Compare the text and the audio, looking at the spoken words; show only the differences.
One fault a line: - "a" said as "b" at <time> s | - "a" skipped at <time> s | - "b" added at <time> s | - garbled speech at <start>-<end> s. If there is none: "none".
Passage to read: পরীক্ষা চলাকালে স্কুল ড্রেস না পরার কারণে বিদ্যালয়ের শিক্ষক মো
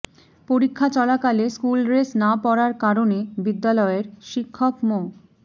none